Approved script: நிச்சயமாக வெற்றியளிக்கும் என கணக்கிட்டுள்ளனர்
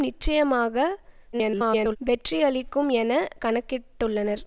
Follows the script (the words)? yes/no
no